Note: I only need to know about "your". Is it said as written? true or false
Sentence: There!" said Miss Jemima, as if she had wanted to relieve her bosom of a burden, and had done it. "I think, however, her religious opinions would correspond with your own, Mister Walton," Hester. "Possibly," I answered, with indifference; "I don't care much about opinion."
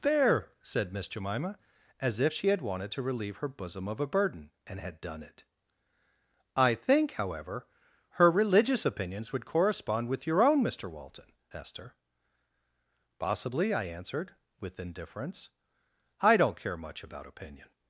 true